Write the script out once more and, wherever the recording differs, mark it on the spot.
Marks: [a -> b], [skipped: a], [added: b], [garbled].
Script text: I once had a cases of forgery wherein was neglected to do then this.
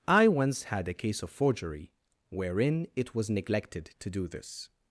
I once had a [cases -> case] of forgery wherein [added: it] was neglected to do [skipped: then] this.